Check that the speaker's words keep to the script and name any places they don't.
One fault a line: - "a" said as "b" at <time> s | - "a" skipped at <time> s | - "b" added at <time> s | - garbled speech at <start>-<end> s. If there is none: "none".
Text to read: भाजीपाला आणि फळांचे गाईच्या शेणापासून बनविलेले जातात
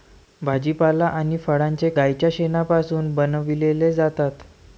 none